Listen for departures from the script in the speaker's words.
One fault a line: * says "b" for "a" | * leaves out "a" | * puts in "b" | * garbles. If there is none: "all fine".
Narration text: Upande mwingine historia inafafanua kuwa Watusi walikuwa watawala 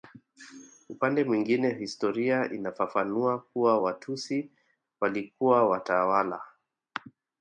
all fine